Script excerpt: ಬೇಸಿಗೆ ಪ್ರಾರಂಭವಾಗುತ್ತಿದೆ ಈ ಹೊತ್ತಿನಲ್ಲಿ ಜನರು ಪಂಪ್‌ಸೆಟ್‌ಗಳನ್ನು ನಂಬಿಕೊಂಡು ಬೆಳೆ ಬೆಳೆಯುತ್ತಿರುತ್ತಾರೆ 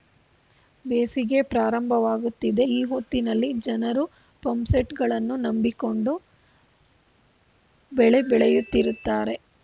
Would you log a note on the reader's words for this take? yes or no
no